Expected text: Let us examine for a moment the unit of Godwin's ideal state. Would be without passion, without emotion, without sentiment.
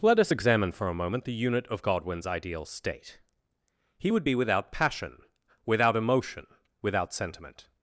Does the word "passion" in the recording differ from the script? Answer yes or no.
no